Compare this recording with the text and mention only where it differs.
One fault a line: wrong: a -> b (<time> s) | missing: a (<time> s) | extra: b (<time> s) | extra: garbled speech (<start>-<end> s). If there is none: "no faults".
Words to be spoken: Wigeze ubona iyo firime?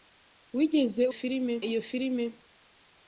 wrong: ubona -> firime (1.2 s)